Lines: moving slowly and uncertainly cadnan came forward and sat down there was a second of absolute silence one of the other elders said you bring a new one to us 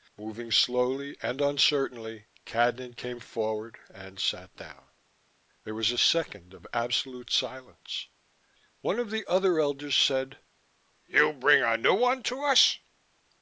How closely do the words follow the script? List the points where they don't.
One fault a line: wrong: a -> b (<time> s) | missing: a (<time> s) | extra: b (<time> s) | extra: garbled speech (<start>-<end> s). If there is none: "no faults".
no faults